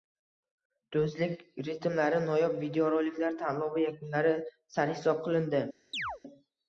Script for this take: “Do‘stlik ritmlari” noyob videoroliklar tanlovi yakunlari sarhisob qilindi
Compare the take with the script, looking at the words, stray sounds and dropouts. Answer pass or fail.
fail